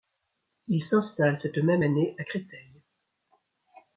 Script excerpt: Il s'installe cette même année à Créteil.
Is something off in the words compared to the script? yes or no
no